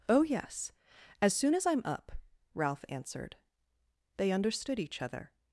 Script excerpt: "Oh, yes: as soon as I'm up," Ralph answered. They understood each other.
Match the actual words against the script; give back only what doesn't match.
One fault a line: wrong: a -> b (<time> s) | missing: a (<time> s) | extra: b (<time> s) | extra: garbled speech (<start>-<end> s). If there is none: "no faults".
no faults